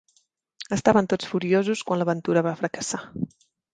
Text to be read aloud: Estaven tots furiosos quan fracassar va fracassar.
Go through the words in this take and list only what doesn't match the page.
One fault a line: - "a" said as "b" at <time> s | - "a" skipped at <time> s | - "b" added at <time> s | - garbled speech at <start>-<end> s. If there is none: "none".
- "fracassar" said as "l'aventura" at 2.0 s